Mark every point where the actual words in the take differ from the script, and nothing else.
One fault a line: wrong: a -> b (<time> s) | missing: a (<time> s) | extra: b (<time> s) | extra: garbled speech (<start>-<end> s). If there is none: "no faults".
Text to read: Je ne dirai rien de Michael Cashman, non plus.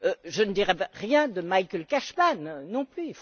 no faults